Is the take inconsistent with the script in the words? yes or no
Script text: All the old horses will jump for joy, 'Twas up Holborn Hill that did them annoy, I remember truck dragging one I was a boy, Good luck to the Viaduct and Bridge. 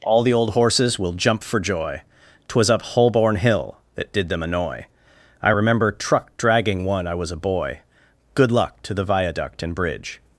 no